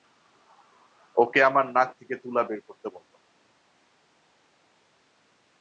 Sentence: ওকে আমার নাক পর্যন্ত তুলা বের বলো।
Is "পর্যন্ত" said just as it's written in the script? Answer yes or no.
no